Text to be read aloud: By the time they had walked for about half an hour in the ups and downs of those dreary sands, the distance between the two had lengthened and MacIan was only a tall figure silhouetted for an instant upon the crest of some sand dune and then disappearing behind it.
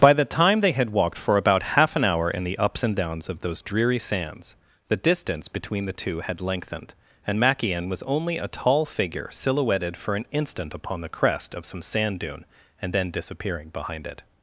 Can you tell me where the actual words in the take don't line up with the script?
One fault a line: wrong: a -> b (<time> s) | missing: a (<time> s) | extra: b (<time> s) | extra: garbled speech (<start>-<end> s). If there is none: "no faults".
no faults